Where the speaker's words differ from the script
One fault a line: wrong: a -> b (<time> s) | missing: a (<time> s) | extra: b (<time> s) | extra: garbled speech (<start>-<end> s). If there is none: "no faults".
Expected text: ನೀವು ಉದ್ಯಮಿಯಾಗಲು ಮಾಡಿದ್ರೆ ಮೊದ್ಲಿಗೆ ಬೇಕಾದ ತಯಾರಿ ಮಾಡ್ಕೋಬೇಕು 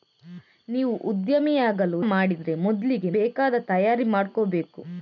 no faults